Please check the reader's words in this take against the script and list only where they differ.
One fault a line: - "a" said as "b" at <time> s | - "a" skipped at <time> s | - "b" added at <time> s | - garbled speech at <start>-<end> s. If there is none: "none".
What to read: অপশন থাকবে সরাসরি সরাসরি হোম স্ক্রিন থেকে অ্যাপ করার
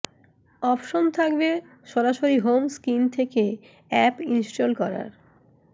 - "সরাসরি" skipped at 2.4 s
- "ইনস্টল" added at 4.3 s